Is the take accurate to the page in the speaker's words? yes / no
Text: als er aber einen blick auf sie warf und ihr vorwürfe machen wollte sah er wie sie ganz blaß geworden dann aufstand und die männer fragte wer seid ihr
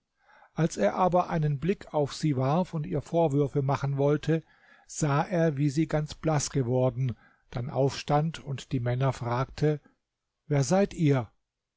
yes